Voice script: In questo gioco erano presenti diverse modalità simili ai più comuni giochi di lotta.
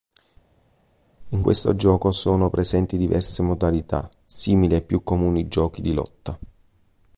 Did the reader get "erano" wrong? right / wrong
wrong